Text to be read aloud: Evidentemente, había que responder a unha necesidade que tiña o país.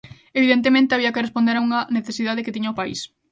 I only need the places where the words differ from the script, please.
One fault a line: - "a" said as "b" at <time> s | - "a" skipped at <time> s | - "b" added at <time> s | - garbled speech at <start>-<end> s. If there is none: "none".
none